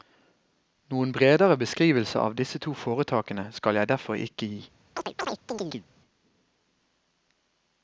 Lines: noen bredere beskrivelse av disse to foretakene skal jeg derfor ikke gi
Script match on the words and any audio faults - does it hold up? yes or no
no